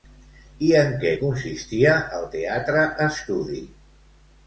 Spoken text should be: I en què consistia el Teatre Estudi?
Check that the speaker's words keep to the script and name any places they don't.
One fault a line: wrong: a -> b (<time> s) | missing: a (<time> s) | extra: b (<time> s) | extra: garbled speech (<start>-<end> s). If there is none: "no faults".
no faults